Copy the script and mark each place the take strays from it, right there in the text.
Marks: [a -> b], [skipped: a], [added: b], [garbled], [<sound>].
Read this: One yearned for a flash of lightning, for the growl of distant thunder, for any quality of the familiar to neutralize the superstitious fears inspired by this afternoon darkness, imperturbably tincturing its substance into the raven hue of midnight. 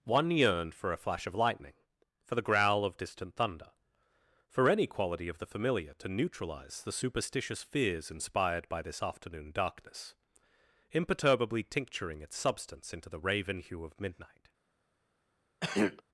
One yearned for a flash of lightning, for the growl of distant thunder, for any quality of the familiar to neutralize the superstitious fears inspired by this afternoon darkness, imperturbably tincturing its substance into the raven hue of midnight. [throat clearing]